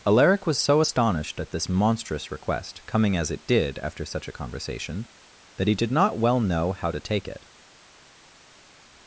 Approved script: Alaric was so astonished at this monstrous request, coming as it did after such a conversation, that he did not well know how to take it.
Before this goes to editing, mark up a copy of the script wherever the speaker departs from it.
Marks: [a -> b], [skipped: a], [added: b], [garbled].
Alaric was so astonished at this monstrous request, coming as it did after such a conversation, that he did not well know how to take it.